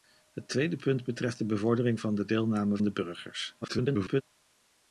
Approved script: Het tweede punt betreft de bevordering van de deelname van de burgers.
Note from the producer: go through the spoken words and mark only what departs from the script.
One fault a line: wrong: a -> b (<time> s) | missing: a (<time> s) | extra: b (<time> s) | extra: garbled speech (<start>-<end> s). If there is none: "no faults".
missing: van (2.8 s)
extra: garbled speech (3.6-4.2 s)